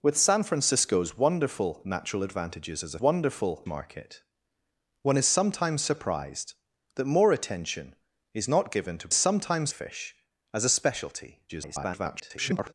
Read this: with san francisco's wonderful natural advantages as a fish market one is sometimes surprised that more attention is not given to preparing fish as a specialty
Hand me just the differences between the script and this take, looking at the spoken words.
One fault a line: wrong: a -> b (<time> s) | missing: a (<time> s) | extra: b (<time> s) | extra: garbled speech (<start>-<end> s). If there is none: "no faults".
wrong: fish -> wonderful (3.0 s)
wrong: preparing -> sometimes (9.1 s)
extra: garbled speech (11.5-12.7 s)